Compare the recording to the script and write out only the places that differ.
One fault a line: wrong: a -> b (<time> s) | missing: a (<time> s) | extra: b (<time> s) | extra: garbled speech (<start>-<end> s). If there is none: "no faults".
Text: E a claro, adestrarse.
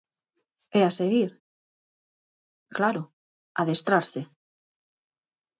extra: seguir (1.0 s)